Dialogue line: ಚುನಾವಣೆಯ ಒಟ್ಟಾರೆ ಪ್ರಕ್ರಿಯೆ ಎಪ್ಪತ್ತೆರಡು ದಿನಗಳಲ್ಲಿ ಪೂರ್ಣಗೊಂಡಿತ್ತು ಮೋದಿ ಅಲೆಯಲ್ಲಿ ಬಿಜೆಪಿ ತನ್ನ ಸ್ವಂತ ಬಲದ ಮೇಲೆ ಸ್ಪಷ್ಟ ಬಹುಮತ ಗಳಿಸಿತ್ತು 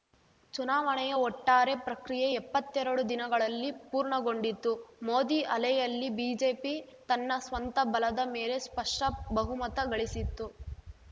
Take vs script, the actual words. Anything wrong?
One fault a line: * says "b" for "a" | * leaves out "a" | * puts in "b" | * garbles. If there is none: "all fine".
all fine